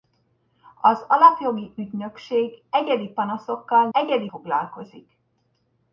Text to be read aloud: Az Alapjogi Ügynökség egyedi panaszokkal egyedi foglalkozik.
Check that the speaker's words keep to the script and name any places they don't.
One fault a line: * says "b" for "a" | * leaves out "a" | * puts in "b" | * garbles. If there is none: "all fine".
all fine